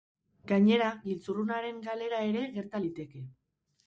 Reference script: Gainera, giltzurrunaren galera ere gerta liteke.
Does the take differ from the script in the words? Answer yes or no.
no